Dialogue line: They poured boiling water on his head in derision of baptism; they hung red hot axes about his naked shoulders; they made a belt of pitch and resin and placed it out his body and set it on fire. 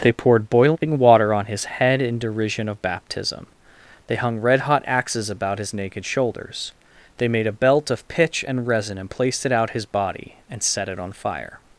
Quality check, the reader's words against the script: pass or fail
pass